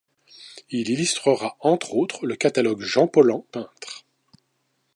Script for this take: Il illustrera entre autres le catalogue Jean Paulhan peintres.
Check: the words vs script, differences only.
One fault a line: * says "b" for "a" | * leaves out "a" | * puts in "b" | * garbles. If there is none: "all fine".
all fine